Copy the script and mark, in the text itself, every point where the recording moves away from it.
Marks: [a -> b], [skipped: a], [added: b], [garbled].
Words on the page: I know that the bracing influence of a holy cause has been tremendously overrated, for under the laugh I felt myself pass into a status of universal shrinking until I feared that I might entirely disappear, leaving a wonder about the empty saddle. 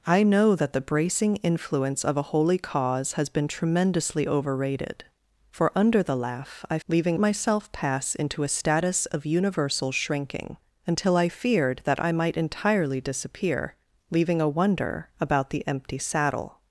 I know that the bracing influence of a holy cause has been tremendously overrated, for under the laugh I [felt -> leaving] myself pass into a status of universal shrinking until I feared that I might entirely disappear, leaving a wonder about the empty saddle.